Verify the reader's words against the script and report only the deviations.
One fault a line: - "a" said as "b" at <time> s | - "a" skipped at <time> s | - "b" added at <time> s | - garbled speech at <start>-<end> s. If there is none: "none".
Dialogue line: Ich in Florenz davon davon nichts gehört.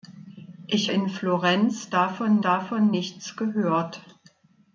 none